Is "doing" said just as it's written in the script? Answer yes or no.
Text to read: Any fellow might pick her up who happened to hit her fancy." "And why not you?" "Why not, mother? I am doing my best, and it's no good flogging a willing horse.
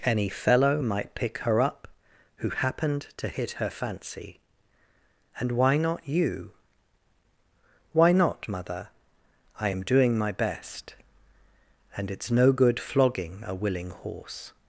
yes